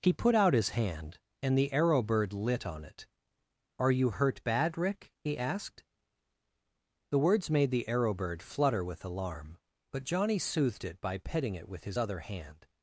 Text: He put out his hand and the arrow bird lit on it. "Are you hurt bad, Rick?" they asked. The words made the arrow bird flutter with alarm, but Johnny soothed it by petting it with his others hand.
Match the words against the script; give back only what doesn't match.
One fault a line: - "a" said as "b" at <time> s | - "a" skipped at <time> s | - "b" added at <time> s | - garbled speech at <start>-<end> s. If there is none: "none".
- "they" said as "he" at 5.2 s
- "others" said as "other" at 12.0 s